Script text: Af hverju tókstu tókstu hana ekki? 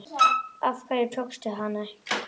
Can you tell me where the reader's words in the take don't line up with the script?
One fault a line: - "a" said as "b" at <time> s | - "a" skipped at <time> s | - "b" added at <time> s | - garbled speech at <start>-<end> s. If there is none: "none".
- "tókstu" skipped at 1.5 s